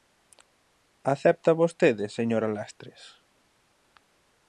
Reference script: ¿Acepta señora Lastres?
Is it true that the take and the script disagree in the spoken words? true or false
true